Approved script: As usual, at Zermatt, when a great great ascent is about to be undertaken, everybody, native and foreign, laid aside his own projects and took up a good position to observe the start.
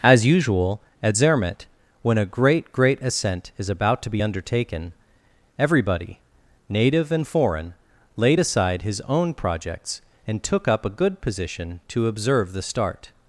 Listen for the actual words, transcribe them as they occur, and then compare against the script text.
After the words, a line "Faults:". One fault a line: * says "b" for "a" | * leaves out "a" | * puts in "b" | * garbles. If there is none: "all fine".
As usual, at Zermatt, when a great great ascent is about to be undertaken, everybody, native and foreign, laid aside his own projects and took up a good position to observe the start.
Faults:
all fine